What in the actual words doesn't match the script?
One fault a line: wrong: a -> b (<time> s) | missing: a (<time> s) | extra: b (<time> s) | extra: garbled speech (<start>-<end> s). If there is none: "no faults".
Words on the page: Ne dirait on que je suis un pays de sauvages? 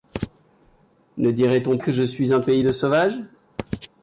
no faults